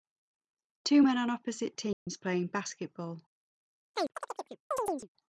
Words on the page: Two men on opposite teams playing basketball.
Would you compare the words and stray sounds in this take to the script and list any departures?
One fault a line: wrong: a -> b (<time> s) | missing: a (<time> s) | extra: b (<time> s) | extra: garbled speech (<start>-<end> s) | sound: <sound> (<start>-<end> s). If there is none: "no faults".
sound: dropout (1.9-2.1 s)
sound: chirp (3.9-5.1 s)